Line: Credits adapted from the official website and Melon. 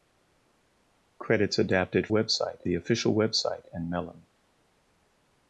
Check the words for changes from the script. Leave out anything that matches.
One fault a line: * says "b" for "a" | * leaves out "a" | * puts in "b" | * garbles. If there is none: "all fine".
* says "website" for "from"